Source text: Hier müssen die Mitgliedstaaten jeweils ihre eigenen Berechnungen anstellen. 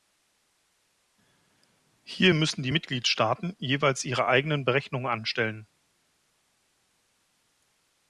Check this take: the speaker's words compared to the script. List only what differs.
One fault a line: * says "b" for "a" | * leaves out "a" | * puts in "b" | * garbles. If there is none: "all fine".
all fine